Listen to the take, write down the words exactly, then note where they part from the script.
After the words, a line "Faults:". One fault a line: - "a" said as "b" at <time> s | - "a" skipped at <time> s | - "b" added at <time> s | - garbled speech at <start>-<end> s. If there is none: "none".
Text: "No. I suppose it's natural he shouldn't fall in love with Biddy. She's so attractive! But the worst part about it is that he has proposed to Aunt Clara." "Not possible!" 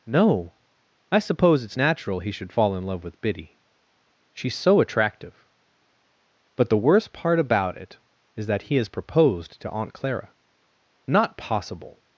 "No. I suppose it's natural he should fall in love with Biddy. She's so attractive! But the worst part about it is that he has proposed to Aunt Clara." "Not possible!"
Faults:
- "shouldn't" said as "should" at 2.3 s